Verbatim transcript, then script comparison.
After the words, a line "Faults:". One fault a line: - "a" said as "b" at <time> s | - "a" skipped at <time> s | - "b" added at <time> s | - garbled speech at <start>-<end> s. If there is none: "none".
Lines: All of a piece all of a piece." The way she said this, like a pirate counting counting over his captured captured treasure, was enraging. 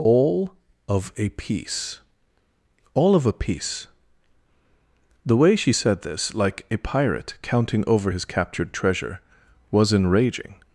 All of a piece all of a piece." The way she said this, like a pirate counting over his captured treasure, was enraging.
Faults:
- "counting" skipped at 7.8 s
- "captured" skipped at 8.7 s